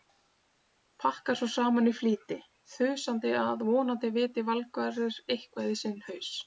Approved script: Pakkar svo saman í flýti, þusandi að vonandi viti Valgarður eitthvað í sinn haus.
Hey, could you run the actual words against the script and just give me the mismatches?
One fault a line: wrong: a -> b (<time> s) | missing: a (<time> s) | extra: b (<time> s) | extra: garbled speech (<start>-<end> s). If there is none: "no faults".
no faults